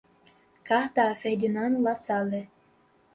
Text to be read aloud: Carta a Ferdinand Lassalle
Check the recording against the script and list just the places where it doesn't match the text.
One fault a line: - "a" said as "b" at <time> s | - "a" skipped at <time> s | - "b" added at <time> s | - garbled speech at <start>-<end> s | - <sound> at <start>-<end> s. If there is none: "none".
none